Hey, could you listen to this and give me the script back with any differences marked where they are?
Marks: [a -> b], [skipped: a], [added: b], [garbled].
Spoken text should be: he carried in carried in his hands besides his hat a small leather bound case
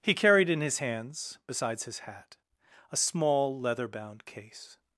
he carried in [skipped: carried in] his hands besides his hat a small leather bound case